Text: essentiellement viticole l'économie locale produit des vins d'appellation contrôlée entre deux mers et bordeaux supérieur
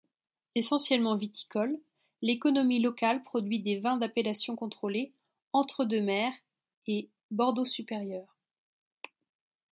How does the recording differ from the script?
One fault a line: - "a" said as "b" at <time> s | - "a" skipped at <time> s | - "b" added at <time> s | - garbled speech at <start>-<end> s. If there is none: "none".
none